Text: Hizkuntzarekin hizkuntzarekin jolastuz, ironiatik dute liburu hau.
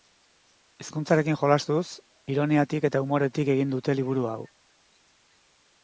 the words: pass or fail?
fail